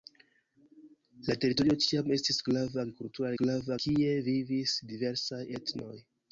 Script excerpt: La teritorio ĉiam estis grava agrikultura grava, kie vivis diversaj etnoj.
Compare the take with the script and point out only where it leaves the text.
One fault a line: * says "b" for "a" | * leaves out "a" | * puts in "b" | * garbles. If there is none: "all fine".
all fine